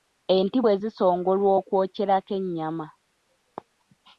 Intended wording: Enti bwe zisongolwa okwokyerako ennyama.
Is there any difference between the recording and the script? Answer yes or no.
no